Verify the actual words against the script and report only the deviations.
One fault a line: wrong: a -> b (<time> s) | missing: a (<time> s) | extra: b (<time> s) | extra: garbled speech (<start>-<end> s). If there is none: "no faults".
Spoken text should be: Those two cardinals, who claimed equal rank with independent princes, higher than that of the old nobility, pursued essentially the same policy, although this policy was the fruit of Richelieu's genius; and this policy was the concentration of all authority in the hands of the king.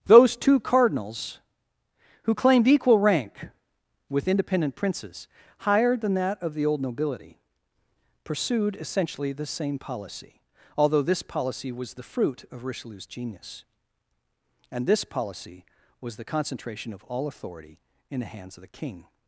no faults